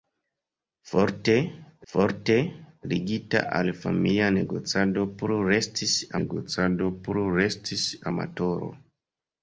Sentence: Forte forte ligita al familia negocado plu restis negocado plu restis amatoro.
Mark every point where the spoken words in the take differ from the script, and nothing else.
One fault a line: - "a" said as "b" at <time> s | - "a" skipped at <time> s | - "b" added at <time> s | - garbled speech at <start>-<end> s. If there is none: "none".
none